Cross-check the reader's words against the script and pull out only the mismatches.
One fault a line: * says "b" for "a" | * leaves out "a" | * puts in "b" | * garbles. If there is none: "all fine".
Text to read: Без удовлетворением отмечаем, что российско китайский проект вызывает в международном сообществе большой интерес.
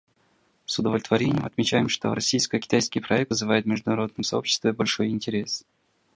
* says "С" for "Без"